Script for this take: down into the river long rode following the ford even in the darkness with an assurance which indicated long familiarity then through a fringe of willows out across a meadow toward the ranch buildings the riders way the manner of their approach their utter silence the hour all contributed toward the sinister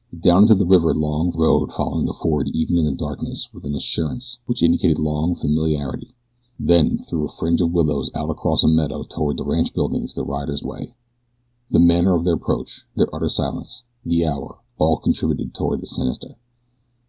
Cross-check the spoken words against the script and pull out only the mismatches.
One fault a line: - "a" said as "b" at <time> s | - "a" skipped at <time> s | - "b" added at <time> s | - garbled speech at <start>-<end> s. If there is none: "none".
none